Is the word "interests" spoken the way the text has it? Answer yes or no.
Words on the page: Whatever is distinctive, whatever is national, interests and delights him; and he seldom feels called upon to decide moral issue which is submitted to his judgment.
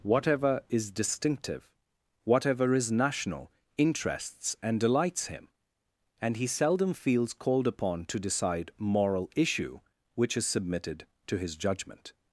yes